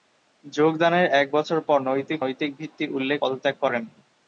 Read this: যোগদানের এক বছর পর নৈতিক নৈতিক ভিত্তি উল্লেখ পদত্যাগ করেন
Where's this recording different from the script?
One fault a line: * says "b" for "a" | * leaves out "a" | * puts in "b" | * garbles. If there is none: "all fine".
all fine